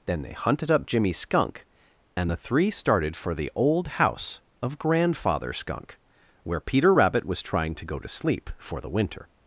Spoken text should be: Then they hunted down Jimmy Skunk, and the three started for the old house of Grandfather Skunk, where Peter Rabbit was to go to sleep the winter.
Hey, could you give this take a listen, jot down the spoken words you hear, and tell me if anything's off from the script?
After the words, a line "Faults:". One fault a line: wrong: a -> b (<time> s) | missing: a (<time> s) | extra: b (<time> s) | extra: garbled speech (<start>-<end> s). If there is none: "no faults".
Then they hunted up Jimmy Skunk, and the three started for the old house of Grandfather Skunk, where Peter Rabbit was trying to go to sleep for the winter.
Faults:
wrong: down -> up (0.7 s)
extra: trying (7.4 s)
extra: for (8.6 s)